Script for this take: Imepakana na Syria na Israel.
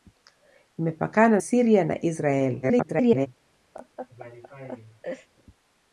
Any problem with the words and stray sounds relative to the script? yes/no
yes